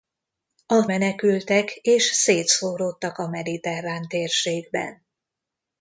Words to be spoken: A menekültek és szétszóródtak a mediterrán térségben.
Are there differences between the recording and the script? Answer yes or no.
no